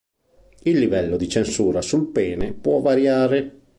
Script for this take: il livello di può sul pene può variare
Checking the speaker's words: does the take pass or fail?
fail